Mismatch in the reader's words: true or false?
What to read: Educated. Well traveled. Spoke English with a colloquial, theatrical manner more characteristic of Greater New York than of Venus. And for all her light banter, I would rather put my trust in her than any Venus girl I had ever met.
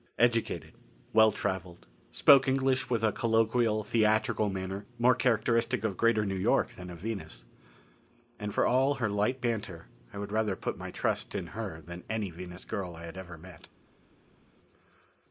false